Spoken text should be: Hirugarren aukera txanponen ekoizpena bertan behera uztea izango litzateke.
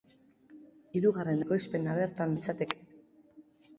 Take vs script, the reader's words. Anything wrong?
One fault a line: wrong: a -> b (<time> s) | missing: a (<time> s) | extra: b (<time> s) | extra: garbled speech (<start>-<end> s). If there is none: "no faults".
missing: aukera txanponen (1.4 s)
missing: behera uztea izango (2.3 s)